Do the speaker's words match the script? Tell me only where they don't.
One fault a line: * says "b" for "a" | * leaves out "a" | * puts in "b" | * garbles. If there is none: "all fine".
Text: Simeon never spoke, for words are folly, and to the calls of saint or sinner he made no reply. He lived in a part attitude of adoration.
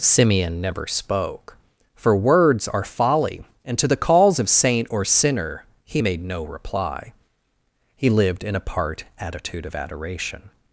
all fine